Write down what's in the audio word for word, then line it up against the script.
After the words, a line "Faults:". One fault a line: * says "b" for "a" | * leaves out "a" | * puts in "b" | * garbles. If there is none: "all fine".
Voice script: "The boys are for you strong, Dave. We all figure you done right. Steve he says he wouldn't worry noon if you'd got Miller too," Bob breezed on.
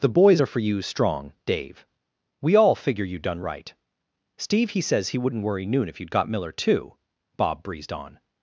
"The boys are for you strong, Dave. We all figure you done right. Steve he says he wouldn't worry noon if you'd got Miller too," Bob breezed on.
Faults:
all fine